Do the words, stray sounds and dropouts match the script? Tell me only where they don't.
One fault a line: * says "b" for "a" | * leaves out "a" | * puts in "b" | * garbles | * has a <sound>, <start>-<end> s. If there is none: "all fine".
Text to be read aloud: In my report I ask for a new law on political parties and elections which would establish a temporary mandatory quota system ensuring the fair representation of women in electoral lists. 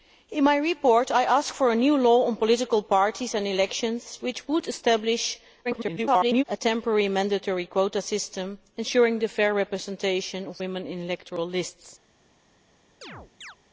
* garbles
* has a chirp, 13.0-13.6 s